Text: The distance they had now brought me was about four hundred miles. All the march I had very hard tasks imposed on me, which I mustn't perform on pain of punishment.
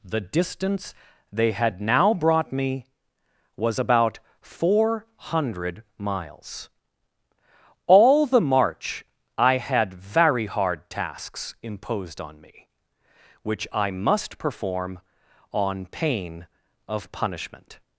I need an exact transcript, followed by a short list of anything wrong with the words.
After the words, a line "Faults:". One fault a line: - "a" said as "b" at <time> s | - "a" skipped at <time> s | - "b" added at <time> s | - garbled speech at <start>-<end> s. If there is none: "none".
The distance they had now brought me was about four hundred miles. All the march I had very hard tasks imposed on me, which I must perform on pain of punishment.
Faults:
- "mustn't" said as "must" at 13.9 s